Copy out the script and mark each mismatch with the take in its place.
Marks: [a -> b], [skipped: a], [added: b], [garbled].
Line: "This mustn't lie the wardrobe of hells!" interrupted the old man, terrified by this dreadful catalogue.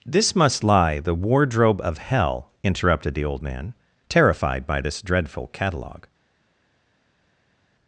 "This [mustn't -> must] lie the wardrobe of [hells!" -> hell] interrupted the old man, terrified by this dreadful catalogue.